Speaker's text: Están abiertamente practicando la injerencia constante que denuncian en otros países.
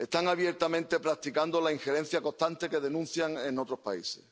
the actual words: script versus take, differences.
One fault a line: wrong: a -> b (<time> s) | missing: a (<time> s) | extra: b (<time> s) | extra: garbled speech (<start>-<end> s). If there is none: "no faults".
no faults